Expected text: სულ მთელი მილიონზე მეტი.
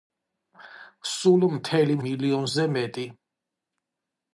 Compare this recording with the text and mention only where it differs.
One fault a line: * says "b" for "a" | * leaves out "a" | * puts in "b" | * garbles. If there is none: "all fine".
all fine